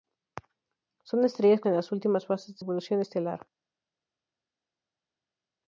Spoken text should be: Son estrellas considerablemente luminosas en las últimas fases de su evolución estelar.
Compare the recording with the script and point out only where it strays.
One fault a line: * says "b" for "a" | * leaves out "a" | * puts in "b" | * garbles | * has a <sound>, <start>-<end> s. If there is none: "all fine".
* leaves out "considerablemente luminosas"
* leaves out "su"